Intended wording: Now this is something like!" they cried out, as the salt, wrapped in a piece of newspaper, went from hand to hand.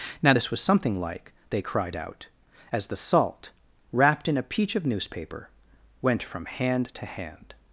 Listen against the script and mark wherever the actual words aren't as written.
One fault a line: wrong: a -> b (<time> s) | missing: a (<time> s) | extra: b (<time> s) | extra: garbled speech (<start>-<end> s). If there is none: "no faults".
wrong: is -> was (0.5 s)
wrong: piece -> peach (4.4 s)